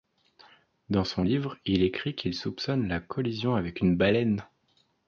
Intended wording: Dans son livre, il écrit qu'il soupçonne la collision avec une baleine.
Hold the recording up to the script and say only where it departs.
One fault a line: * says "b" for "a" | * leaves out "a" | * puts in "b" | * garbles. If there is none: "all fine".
all fine